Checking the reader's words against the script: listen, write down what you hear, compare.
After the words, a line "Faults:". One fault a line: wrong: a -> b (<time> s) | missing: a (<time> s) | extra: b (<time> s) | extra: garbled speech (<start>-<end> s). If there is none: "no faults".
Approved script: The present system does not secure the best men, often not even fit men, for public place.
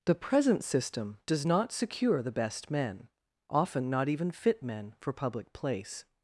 The present system does not secure the best men, often not even fit men, for public place.
Faults:
no faults